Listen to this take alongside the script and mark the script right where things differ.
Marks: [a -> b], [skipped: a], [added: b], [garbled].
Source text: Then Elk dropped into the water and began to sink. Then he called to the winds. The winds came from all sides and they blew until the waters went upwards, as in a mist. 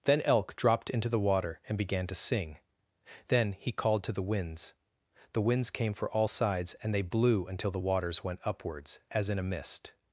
Then Elk dropped into the water and began to [sink. -> sing] Then he called to the winds. The winds came [from -> for] all sides and they blew until the waters went upwards, as in a mist.